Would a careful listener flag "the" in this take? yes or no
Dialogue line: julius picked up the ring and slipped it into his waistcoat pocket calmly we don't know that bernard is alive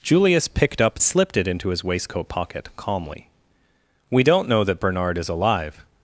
yes